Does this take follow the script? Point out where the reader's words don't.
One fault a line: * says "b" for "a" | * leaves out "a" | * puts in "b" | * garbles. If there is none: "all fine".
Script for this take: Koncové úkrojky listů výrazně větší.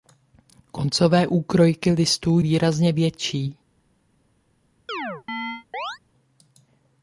all fine